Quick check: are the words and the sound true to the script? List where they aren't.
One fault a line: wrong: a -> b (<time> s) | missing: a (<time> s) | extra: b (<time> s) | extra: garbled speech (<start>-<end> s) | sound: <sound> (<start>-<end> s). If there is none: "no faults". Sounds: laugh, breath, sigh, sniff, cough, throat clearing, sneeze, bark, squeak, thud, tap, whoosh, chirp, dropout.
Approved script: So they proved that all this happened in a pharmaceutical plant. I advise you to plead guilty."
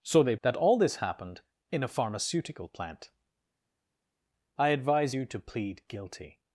missing: proved (0.3 s)